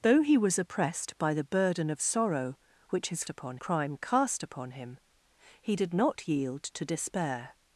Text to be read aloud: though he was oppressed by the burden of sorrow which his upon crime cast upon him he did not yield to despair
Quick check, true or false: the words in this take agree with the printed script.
true